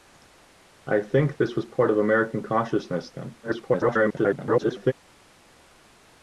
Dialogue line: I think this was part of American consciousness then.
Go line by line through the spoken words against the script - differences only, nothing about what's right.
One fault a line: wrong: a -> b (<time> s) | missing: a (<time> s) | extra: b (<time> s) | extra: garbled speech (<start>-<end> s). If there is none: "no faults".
extra: garbled speech (3.4-4.9 s)